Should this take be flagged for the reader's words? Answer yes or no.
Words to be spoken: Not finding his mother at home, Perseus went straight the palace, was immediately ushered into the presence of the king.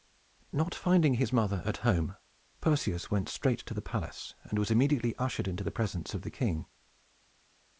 yes